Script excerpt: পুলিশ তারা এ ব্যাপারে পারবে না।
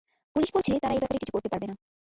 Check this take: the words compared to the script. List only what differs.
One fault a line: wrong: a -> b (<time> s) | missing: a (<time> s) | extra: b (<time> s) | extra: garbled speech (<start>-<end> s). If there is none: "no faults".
extra: বলছে (0.6 s)
extra: কিছু করতে (1.2 s)